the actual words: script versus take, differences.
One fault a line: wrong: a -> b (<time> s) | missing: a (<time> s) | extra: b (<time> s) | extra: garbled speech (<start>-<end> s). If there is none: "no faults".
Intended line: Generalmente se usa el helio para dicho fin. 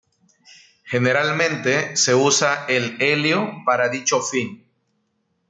no faults